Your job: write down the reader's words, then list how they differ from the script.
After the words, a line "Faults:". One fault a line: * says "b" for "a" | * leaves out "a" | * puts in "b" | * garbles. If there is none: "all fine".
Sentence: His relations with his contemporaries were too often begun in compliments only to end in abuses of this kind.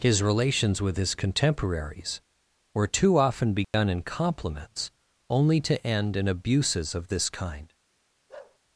His relations with his contemporaries were too often begun in compliments only to end in abuses of this kind.
Faults:
all fine